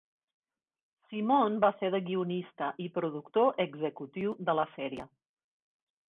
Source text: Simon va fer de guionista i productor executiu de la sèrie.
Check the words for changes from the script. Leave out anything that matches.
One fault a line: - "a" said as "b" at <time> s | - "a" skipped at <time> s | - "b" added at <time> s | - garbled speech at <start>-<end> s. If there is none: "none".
none